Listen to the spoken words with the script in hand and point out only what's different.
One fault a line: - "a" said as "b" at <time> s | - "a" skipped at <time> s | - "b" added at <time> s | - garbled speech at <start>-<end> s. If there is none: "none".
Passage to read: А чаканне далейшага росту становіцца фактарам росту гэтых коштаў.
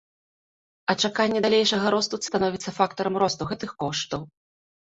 none